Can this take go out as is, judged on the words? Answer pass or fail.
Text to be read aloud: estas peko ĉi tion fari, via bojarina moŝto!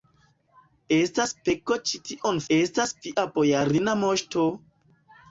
fail